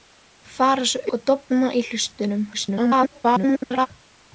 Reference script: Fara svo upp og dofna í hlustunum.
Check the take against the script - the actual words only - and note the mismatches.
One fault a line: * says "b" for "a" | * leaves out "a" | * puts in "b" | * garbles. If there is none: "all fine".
* leaves out "upp"
* garbles